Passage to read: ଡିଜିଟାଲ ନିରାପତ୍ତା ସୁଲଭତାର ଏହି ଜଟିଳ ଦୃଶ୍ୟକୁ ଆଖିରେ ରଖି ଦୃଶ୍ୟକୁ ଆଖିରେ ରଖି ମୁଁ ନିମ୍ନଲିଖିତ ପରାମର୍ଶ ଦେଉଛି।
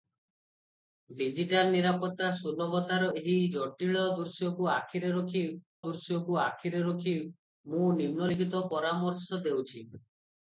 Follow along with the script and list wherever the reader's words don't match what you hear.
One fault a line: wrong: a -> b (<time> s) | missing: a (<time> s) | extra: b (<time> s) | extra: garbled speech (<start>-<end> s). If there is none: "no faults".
no faults